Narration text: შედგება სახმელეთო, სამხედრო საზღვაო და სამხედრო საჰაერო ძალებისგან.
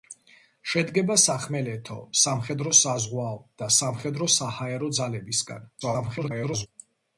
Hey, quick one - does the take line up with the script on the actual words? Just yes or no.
no